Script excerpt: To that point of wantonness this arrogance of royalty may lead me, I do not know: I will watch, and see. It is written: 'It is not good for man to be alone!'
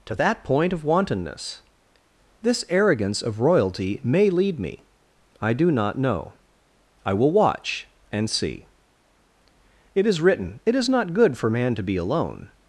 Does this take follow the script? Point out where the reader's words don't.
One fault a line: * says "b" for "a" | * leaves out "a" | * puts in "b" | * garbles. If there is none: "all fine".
all fine